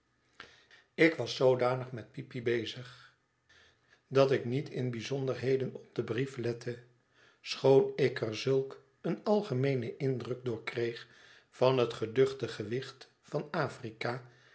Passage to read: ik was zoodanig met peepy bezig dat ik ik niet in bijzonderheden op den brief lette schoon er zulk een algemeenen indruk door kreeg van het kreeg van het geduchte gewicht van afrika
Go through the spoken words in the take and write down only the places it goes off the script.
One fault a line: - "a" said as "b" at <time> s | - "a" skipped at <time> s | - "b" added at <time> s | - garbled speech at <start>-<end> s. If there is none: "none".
- "ik" skipped at 4.4 s
- "ik" added at 7.9 s
- "kreeg van het" skipped at 11.9 s